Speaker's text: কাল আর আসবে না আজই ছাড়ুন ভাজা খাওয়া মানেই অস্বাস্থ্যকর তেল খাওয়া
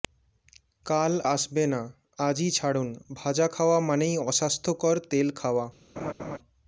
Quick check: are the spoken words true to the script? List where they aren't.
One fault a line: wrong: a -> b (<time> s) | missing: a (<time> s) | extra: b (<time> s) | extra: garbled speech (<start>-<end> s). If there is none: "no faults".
missing: আর (1.1 s)